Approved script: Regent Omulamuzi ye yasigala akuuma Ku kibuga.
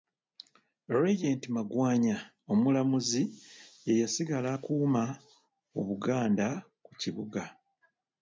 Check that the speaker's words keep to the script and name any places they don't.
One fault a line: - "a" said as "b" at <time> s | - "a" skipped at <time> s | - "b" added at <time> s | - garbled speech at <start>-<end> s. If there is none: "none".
- "Magwanya" added at 1.6 s
- "Obuganda" added at 5.8 s